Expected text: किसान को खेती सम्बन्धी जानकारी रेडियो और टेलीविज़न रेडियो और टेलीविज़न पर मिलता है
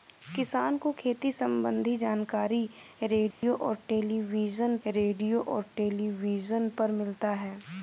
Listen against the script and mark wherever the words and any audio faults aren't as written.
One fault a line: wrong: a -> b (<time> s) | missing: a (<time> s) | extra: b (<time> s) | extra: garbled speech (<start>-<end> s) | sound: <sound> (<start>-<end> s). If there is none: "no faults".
sound: dropout (3.3-3.4 s)